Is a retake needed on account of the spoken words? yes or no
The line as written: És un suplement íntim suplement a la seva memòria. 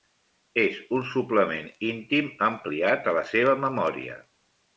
yes